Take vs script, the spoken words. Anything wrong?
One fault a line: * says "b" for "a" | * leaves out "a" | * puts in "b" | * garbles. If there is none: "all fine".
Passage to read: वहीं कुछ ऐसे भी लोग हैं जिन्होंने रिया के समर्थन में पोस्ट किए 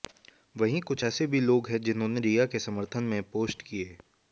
all fine